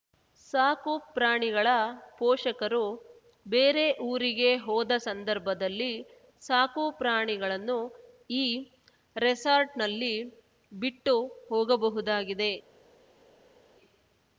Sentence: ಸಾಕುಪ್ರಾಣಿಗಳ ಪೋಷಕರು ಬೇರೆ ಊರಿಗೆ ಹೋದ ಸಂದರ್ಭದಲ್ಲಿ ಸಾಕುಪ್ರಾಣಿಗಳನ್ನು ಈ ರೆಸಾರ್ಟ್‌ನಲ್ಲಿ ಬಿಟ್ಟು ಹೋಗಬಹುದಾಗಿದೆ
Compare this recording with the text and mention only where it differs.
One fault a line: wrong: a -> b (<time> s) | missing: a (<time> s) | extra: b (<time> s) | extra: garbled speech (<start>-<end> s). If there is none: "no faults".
no faults